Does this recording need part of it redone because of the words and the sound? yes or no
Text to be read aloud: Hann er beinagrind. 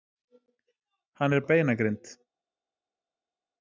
no